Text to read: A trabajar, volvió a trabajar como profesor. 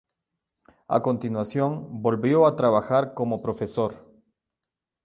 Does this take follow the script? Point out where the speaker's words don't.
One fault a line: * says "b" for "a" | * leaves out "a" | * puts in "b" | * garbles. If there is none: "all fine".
* says "continuación" for "trabajar"